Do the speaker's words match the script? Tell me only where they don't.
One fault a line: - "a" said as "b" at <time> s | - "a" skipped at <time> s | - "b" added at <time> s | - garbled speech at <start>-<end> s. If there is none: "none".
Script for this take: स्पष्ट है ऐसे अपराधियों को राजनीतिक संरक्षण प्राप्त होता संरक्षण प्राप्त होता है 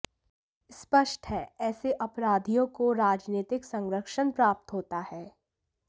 - "संरक्षण प्राप्त होता" skipped at 5.0 s